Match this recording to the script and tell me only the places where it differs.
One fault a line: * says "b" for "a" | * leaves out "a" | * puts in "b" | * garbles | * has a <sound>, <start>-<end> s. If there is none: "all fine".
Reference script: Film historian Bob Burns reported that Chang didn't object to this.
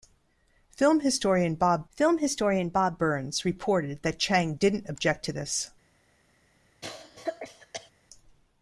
* puts in "film historian Bob"
* has a cough, 6.8-7.9 s